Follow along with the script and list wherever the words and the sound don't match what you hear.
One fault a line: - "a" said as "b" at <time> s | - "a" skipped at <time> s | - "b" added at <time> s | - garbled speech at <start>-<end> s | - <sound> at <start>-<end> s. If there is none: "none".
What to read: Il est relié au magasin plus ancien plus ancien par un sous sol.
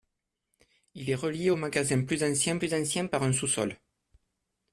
none